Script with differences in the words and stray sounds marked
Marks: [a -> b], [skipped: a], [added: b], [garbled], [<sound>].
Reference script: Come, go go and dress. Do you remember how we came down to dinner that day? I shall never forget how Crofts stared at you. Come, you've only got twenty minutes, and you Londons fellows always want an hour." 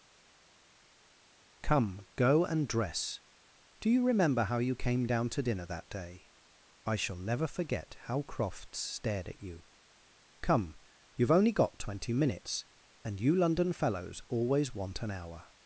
Come, go [skipped: go] and dress. Do you remember how [we -> you] came down to dinner that day? I shall never forget how Crofts stared at you. Come, you've only got twenty minutes, and you [Londons -> London] fellows always want an hour."